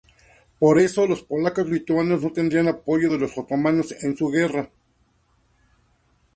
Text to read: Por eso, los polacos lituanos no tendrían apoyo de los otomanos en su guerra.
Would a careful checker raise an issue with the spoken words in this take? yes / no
no